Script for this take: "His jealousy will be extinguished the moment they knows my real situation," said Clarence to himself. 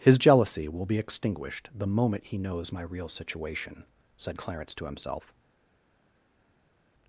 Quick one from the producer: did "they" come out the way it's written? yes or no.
no